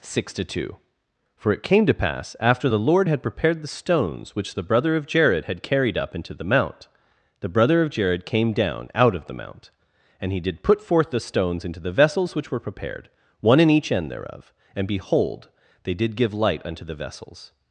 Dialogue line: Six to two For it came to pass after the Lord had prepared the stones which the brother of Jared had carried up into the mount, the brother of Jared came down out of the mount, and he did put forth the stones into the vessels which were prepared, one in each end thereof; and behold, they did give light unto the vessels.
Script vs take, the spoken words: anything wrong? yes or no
no